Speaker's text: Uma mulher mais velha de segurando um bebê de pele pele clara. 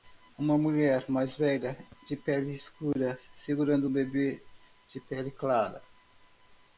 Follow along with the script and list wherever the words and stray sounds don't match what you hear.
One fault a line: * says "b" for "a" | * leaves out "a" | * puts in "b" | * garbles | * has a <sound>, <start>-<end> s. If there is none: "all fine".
* puts in "pele escura"
* leaves out "pele"